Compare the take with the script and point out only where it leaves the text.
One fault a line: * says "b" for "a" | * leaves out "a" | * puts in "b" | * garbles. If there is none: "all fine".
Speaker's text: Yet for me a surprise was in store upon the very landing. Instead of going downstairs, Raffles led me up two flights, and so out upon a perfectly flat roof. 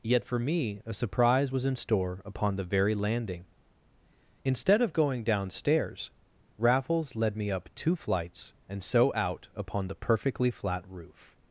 * says "the" for "a"